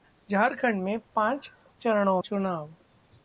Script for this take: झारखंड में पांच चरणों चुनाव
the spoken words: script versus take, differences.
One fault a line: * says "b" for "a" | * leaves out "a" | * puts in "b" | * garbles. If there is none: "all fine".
all fine